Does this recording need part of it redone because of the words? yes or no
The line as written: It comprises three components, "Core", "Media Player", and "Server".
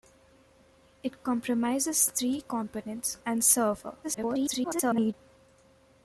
yes